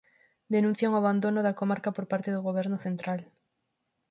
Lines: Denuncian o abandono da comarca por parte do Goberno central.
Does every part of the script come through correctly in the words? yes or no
yes